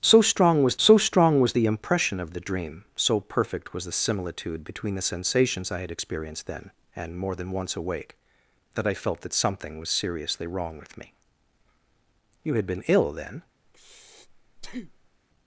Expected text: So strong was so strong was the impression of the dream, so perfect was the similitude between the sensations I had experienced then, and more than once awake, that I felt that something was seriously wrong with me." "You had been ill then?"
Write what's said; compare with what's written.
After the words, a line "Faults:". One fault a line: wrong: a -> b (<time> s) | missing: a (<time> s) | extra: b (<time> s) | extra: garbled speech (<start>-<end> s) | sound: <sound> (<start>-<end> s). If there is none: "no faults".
So strong was so strong was the impression of the dream, so perfect was the similitude between the sensations I had experienced then, and more than once awake, that I felt that something was seriously wrong with me." "You had been ill then?"
Faults:
sound: breath (13.6-15.2 s)